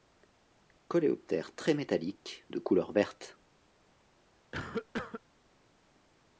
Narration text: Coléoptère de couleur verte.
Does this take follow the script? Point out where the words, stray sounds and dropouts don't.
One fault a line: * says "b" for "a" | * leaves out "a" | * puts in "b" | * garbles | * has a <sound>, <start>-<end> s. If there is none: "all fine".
* puts in "très métallique"
* has a cough, 4.5-5.2 s